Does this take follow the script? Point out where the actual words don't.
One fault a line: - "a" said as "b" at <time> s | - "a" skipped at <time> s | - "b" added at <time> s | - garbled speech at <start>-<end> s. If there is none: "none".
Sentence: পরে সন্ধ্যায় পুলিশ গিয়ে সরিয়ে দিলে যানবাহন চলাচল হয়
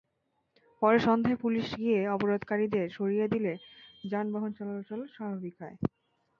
- "অবরোধকারীদের" added at 2.1 s
- "স্বাভাবিক" added at 5.2 s